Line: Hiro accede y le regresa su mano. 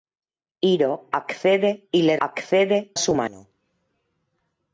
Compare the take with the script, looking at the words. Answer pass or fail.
fail